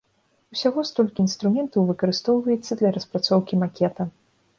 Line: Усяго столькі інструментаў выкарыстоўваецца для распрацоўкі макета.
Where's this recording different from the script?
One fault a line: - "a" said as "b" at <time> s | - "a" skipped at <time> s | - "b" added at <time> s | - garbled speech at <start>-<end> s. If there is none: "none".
none